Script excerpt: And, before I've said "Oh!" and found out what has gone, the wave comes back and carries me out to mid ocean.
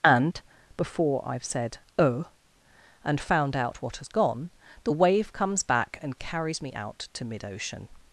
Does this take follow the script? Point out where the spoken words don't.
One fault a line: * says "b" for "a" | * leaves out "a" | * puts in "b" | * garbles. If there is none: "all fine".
all fine